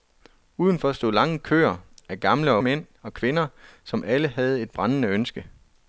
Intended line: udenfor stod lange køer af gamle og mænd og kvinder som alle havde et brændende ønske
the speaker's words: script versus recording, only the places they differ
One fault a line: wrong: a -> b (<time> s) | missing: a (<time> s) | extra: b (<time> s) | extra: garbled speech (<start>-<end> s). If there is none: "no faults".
no faults